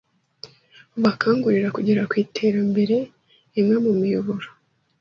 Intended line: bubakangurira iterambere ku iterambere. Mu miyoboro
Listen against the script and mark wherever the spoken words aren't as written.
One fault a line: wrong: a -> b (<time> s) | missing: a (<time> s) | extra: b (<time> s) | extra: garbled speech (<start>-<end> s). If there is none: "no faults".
wrong: iterambere -> kugera (1.7 s)
extra: Imwe (3.6 s)